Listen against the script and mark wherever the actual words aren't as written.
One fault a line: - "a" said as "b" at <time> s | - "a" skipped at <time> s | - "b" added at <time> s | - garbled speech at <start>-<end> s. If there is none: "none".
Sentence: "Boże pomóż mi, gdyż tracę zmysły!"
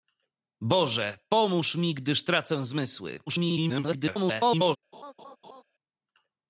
- garbled speech at 3.3-4.8 s